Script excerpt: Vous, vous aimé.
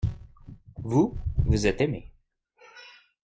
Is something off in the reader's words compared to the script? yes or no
yes